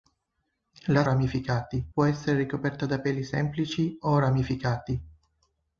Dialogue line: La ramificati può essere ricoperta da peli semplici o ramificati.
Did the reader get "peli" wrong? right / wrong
right